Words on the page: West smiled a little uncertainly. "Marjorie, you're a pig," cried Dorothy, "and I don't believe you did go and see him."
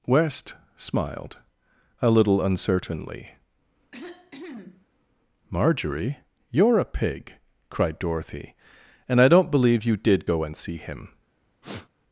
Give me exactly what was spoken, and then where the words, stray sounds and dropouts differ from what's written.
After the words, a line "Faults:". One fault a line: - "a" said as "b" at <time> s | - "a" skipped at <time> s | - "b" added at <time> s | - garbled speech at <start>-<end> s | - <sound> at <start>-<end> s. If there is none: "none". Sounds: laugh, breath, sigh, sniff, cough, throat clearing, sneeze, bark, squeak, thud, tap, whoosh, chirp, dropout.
West smiled a little uncertainly. "Marjorie, you're a pig," cried Dorothy, "and I don't believe you did go and see him."
Faults:
- cough at 3.9-4.9 s
- sniff at 11.6-11.9 s